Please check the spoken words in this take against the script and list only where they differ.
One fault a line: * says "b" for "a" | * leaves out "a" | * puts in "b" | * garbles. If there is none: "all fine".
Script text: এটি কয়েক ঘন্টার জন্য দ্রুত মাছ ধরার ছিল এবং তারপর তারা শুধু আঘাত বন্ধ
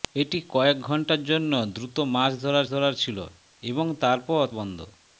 * puts in "ধরার"
* leaves out "তারা শুধু আঘাত"